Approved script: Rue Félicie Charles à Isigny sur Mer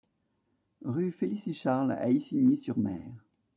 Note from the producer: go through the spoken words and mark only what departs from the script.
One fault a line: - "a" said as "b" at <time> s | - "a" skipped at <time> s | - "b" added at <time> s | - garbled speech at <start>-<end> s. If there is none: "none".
none